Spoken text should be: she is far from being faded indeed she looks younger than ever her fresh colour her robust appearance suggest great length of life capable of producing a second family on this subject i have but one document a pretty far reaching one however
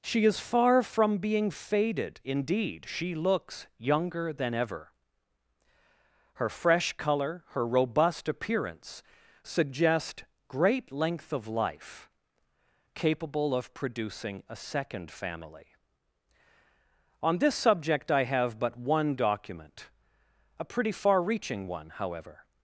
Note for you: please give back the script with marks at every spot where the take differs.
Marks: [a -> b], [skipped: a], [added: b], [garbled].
she is far from being faded indeed she looks younger than ever her fresh colour her robust appearance suggest great length of life capable of producing a second family on this subject i have but one document a pretty far reaching one however